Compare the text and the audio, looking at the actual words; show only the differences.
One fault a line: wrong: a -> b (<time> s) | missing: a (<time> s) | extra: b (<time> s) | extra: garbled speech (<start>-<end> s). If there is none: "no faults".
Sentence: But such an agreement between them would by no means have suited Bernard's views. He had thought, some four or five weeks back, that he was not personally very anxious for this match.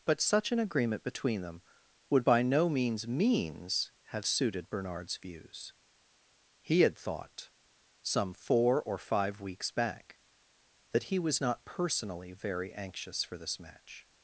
extra: means (3.1 s)